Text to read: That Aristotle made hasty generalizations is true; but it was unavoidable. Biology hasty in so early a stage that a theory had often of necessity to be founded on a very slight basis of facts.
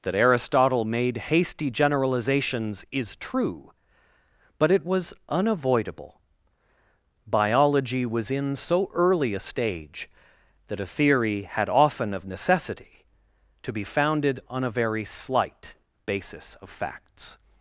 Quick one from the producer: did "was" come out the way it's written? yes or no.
yes